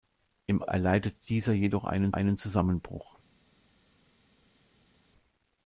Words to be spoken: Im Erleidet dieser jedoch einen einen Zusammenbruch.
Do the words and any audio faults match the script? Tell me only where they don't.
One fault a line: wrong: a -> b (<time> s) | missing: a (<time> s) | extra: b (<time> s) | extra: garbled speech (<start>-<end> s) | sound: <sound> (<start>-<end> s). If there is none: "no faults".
no faults